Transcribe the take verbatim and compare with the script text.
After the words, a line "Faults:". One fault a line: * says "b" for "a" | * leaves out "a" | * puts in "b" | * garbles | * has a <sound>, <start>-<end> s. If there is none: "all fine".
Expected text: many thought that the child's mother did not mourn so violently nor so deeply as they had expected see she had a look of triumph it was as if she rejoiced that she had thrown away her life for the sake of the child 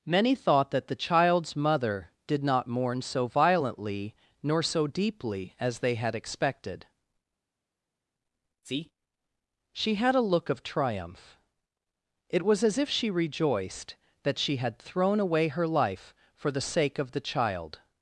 many thought that the child's mother did not mourn so violently nor so deeply as they had expected see she had a look of triumph it was as if she rejoiced that she had thrown away her life for the sake of the child
Faults:
all fine